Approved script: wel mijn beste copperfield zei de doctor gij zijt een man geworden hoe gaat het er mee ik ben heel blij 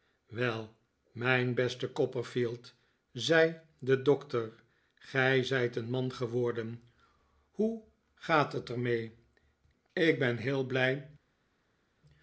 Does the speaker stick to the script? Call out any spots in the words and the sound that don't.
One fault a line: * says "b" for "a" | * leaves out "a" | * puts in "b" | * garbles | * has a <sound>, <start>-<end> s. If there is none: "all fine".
all fine